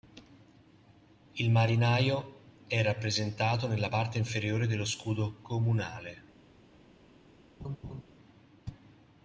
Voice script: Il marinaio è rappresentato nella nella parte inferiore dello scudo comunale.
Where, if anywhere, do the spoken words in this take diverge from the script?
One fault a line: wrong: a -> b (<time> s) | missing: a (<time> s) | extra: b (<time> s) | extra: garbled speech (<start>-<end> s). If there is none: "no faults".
missing: nella (3.9 s)